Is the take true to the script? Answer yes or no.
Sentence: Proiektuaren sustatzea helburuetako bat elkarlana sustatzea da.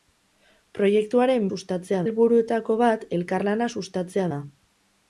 yes